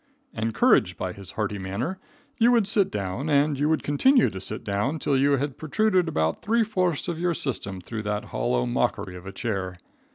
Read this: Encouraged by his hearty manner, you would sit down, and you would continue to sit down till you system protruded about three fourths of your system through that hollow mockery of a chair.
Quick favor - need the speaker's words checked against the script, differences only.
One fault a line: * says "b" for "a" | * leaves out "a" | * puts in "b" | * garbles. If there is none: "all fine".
* says "had" for "system"